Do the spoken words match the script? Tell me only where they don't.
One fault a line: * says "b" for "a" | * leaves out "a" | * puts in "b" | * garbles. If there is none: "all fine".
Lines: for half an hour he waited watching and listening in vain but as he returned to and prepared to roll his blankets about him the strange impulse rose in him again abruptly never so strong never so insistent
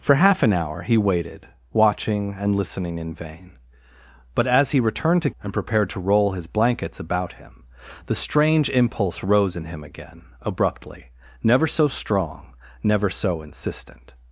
all fine